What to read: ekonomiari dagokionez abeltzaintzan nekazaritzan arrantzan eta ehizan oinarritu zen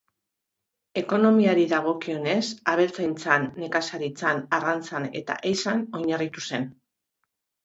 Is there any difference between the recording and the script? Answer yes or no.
no